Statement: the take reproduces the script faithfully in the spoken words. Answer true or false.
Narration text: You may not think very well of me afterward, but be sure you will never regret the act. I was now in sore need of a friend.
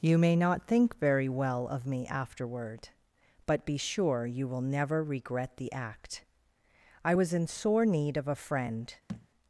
false